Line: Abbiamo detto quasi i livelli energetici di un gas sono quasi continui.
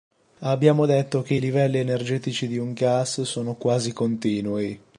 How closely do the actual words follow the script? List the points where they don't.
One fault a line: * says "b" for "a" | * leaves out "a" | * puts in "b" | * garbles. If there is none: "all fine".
* says "che" for "quasi"